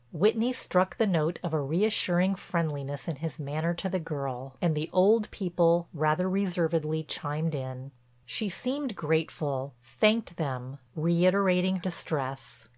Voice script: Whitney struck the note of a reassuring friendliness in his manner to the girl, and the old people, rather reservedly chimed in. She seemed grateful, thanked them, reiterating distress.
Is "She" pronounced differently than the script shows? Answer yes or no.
no